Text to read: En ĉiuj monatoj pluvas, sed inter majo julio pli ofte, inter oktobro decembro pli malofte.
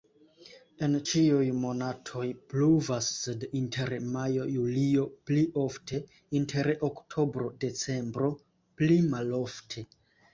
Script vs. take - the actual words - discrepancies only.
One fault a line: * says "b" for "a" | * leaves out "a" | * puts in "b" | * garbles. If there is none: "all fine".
all fine